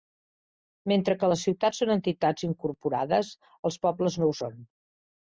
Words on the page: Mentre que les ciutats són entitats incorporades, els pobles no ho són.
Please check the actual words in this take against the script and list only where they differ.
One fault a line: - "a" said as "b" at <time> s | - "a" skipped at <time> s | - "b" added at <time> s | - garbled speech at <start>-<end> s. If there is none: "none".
none